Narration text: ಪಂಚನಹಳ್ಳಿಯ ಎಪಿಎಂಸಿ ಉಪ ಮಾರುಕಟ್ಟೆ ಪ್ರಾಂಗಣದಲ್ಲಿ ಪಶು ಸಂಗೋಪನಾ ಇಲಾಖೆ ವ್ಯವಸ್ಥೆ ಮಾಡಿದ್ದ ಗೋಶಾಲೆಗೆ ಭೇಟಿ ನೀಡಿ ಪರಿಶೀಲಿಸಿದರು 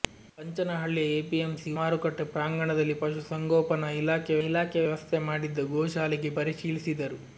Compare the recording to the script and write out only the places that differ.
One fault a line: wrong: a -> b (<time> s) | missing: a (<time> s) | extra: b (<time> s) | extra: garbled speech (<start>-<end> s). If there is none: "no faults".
missing: ಉಪ (1.7 s)
extra: ಇಲಾಖೆ (4.5 s)
missing: ಭೇಟಿ ನೀಡಿ (6.3 s)